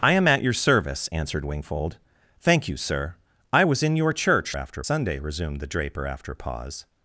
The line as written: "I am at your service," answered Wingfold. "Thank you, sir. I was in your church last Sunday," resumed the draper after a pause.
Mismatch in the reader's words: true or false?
true